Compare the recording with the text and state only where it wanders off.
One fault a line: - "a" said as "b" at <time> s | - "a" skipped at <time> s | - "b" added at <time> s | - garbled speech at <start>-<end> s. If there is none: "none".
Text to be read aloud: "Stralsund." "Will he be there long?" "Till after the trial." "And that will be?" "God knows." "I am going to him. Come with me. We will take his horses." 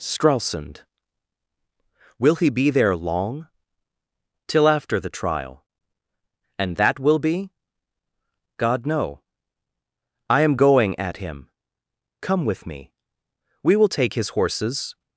- "knows" said as "know" at 8.9 s
- "to" said as "at" at 11.0 s